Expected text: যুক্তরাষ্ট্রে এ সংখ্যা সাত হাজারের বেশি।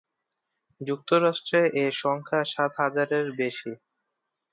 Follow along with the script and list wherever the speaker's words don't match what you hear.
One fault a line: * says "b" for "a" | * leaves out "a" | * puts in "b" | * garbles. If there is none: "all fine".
all fine